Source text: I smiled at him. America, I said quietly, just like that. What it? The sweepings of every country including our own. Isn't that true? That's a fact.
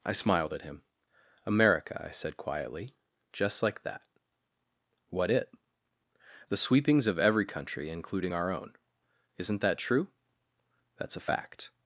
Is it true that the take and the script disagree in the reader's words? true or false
false